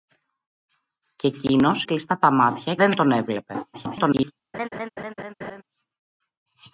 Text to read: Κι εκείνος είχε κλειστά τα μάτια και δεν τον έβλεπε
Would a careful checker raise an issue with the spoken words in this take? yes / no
yes